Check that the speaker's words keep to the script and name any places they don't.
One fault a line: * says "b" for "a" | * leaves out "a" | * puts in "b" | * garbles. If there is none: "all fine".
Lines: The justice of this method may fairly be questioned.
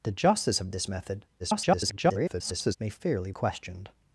* garbles
* leaves out "be"